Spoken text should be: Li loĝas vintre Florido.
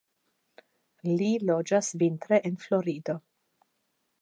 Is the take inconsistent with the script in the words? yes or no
yes